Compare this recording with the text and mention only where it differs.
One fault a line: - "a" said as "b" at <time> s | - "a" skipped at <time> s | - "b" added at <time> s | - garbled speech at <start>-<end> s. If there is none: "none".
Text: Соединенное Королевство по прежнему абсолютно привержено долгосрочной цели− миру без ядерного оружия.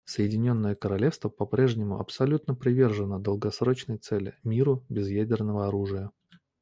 none